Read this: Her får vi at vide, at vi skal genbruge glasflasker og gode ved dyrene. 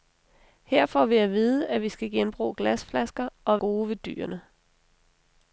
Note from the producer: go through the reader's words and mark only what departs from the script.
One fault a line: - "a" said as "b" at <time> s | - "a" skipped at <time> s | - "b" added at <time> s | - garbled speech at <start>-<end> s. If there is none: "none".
none